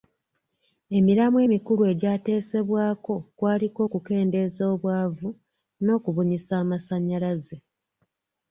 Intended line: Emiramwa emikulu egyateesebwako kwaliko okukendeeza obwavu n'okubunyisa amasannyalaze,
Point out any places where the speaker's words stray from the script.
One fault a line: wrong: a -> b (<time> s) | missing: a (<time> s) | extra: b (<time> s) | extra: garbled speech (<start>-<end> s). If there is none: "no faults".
no faults